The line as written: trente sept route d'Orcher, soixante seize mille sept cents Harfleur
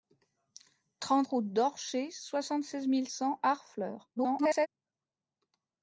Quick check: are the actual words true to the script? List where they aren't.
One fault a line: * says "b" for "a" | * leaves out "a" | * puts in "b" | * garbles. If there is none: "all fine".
* leaves out "sept"
* leaves out "sept"
* garbles